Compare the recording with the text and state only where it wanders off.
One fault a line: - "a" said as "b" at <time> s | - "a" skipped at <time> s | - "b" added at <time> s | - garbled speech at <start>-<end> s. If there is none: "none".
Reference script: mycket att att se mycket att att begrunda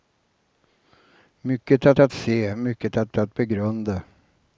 none